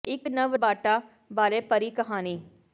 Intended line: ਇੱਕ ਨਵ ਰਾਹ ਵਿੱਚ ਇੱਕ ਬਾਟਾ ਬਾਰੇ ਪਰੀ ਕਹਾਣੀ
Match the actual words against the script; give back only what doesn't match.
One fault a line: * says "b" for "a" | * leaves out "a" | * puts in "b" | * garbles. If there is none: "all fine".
* leaves out "ਰਾਹ ਵਿੱਚ ਇੱਕ"